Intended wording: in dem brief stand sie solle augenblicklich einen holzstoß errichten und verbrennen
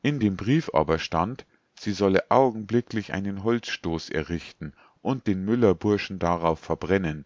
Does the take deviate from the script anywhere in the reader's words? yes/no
yes